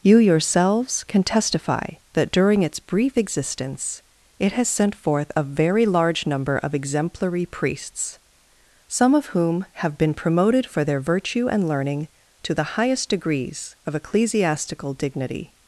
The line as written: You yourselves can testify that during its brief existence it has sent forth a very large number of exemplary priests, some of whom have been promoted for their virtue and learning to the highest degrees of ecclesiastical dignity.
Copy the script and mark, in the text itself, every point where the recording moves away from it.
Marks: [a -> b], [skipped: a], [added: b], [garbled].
You yourselves can testify that during its brief existence it has sent forth a very large number of exemplary priests, some of whom have been promoted for their virtue and learning to the highest degrees of ecclesiastical dignity.